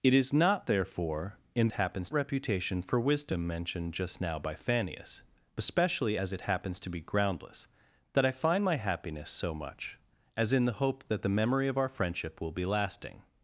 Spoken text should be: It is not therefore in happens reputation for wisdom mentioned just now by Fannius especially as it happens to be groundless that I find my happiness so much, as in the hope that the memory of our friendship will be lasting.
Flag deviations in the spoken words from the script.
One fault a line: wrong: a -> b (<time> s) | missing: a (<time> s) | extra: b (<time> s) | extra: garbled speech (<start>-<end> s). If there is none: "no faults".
no faults